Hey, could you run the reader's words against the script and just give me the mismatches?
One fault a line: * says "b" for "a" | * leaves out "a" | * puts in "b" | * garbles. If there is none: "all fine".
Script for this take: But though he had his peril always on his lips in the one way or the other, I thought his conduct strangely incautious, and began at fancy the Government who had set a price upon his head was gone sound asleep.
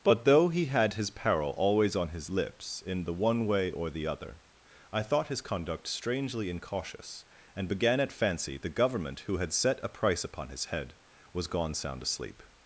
all fine